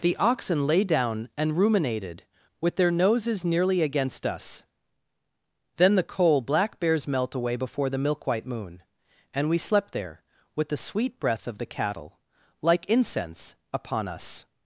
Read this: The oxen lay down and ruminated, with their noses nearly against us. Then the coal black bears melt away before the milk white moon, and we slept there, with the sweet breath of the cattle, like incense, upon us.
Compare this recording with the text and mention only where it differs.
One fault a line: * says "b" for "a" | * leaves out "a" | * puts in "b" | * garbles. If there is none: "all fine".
all fine